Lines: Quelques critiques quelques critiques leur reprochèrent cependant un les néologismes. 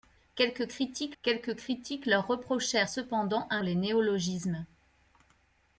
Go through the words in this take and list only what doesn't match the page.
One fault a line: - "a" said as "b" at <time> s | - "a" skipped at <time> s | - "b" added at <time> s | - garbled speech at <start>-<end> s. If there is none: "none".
none